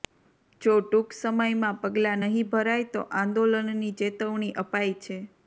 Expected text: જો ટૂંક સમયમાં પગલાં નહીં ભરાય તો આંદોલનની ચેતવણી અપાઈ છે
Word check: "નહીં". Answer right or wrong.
right